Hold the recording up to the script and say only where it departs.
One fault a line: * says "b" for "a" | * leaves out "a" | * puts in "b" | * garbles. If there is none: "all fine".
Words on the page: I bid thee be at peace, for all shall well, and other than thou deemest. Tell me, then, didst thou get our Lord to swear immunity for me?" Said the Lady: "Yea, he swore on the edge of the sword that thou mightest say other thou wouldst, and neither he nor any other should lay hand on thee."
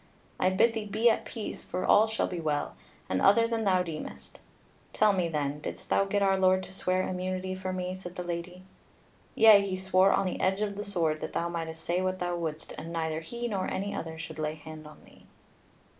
* puts in "be"
* says "what" for "other"